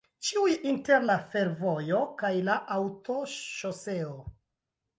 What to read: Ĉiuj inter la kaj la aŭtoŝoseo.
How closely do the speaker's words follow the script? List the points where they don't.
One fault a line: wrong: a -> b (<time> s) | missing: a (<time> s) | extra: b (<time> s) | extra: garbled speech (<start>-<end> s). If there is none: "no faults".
extra: fervojo (1.3 s)